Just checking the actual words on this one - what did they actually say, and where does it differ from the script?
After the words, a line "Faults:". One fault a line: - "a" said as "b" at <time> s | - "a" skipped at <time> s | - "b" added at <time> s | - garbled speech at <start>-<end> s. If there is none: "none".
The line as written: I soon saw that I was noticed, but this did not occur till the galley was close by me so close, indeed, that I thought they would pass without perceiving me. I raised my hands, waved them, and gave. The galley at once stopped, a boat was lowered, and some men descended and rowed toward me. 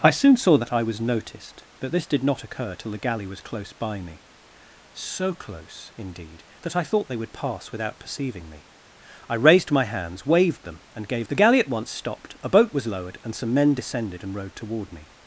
I soon saw that I was noticed, but this did not occur till the galley was close by me so close, indeed, that I thought they would pass without perceiving me. I raised my hands, waved them, and gave. The galley at once stopped, a boat was lowered, and some men descended and rowed toward me.
Faults:
none